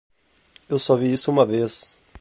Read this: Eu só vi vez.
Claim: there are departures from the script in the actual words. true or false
true